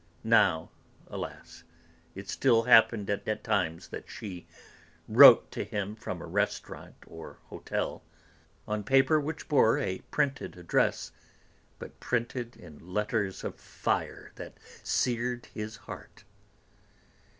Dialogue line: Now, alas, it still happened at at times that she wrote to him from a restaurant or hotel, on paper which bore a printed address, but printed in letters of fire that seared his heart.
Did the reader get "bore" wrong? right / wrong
right